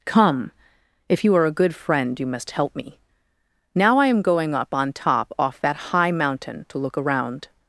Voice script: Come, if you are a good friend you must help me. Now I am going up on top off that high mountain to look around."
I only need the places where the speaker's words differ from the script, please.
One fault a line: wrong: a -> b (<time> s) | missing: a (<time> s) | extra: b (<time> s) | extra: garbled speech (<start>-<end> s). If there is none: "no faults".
no faults